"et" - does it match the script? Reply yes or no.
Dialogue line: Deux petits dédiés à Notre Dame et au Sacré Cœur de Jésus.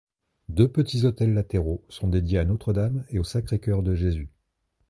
yes